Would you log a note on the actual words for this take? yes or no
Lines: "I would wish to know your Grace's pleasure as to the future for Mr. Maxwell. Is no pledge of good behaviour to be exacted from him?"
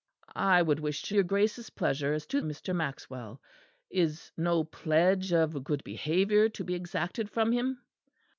yes